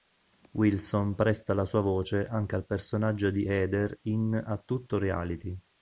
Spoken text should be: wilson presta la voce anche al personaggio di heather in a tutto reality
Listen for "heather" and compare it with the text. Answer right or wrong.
right